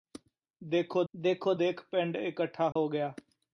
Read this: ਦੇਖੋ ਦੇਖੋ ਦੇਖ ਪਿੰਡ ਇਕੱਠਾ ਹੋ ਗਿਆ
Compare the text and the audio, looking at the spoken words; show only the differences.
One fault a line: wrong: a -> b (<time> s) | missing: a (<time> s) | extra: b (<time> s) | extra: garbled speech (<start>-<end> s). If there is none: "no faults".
no faults